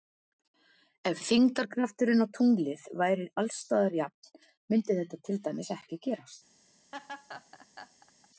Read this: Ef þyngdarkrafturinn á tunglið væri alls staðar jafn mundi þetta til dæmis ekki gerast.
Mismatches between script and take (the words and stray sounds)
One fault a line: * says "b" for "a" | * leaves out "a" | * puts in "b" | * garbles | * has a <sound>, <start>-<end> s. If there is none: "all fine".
* has a laugh, 6.9-8.3 s